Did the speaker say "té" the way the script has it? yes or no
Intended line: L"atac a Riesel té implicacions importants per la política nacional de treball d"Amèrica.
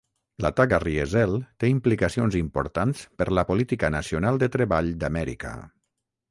yes